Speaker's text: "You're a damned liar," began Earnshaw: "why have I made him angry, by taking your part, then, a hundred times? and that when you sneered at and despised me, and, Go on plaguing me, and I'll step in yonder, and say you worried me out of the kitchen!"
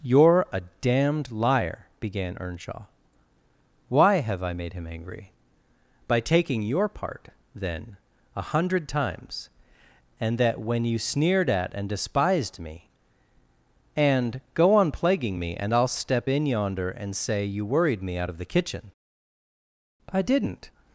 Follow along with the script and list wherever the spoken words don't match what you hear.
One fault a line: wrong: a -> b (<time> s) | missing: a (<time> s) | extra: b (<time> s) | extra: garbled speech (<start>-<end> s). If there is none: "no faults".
extra: I didn't (20.1 s)